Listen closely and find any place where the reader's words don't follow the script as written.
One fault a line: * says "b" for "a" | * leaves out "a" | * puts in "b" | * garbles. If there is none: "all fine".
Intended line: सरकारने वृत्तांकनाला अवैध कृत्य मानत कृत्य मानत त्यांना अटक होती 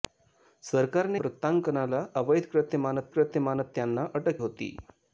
all fine